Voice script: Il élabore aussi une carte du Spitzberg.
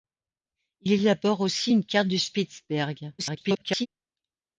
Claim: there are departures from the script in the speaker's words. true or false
true